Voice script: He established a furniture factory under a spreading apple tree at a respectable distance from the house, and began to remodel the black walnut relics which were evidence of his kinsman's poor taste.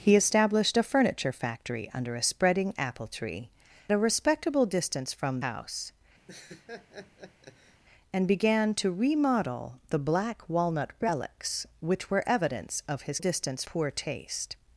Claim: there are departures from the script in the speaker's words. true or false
true